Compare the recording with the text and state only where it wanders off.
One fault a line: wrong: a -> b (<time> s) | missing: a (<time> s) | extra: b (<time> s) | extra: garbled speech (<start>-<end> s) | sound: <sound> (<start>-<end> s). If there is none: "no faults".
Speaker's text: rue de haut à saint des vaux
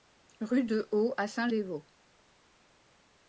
no faults